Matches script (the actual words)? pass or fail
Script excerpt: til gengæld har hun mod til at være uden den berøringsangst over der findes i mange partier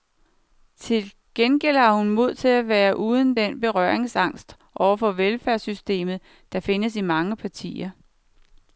fail